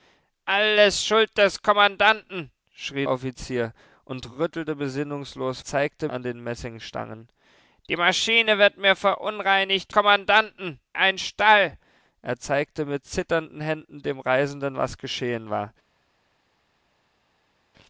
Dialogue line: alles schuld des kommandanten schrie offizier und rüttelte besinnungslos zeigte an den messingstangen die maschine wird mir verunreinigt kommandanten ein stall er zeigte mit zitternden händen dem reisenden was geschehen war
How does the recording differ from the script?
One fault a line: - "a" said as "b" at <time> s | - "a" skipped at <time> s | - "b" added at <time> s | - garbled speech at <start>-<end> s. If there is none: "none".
none